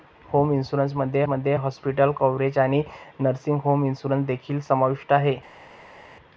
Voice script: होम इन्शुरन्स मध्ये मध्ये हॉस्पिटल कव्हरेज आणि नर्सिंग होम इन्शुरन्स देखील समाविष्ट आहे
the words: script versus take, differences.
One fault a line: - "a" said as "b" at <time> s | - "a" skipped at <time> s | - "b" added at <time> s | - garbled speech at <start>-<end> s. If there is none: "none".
none